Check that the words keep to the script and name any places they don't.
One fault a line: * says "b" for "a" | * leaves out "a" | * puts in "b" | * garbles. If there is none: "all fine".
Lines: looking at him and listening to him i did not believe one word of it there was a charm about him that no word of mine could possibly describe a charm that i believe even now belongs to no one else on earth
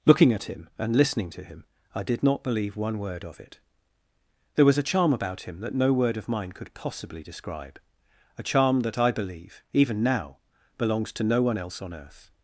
all fine